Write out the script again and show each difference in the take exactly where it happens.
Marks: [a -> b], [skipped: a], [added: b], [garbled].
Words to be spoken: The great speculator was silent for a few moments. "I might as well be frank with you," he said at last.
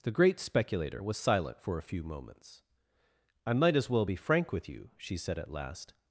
The great speculator was silent for a few moments. "I might as well be frank with you," [he -> she] said at last.